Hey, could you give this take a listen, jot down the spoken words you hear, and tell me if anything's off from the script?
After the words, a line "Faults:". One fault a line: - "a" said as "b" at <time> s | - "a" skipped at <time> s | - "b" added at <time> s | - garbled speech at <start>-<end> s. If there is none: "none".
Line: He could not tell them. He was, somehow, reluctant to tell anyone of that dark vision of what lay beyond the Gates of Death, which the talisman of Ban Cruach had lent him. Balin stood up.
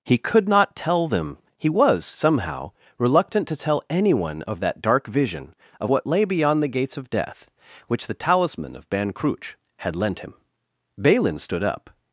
He could not tell them. He was, somehow, reluctant to tell anyone of that dark vision of what lay beyond the Gates of Death, which the talisman of Ban Cruach had lent him. Balin stood up.
Faults:
none